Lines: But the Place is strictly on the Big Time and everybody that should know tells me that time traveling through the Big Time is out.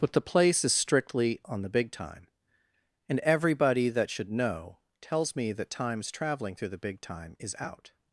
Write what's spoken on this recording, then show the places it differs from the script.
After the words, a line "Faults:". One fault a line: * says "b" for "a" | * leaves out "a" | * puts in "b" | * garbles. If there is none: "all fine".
But the Place is strictly on the Big Time and everybody that should know tells me that times traveling through the Big Time is out.
Faults:
* says "times" for "time"